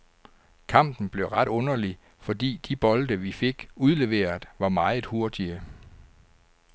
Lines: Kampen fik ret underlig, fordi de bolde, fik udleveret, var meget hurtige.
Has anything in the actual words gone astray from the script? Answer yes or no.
yes